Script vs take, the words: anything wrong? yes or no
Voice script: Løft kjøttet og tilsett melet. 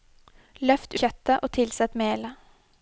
no